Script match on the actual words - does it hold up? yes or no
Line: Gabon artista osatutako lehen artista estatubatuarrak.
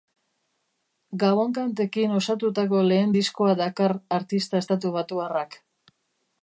no